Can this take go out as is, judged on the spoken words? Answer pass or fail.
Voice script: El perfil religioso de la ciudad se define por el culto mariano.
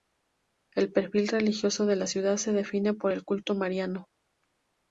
pass